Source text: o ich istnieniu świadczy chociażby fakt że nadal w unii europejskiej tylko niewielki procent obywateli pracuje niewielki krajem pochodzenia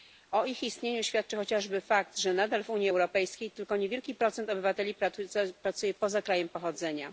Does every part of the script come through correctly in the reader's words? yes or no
no